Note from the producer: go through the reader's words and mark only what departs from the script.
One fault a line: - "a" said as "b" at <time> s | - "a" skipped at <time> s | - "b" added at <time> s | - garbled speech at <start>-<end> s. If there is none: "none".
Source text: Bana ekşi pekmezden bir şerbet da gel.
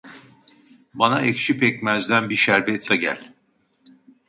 none